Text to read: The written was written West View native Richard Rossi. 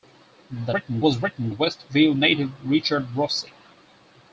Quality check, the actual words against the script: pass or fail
pass